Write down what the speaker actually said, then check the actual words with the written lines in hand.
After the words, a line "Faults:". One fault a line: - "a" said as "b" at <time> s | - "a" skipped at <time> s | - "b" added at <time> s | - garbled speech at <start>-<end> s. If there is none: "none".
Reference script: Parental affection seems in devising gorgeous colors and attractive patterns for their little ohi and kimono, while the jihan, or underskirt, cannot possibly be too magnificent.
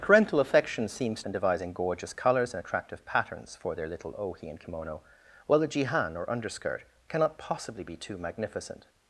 Parental affection seems in devising gorgeous colors and attractive patterns for their little ohi and kimono, while the jihan, or underskirt, cannot possibly be too magnificent.
Faults:
none